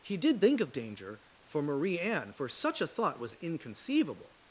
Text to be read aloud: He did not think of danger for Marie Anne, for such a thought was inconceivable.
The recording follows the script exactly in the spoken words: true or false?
false